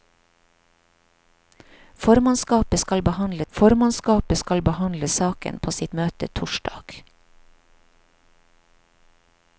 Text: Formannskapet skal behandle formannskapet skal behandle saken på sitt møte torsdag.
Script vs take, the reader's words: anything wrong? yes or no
no